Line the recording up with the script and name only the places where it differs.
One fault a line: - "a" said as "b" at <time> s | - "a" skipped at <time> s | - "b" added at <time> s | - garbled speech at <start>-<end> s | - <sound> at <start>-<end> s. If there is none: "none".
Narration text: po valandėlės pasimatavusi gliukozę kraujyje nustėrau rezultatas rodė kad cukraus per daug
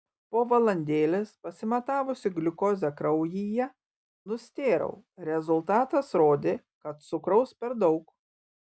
none